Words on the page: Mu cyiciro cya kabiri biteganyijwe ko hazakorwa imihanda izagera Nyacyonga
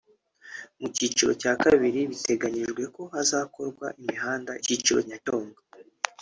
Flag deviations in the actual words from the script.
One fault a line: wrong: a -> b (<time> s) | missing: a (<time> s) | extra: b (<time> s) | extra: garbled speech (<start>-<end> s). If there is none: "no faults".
wrong: izagera -> cyiciro (4.6 s)